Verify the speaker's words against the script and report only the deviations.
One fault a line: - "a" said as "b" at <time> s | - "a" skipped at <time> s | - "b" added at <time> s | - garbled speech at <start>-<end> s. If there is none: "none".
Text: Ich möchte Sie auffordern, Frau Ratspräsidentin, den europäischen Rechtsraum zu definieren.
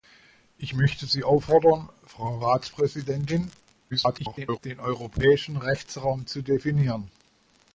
- garbled speech at 3.9-4.6 s